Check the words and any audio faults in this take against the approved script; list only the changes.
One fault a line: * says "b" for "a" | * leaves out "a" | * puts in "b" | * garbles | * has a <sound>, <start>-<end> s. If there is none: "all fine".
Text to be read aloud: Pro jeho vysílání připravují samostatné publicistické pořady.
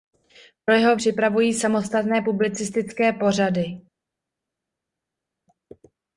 * leaves out "vysílání"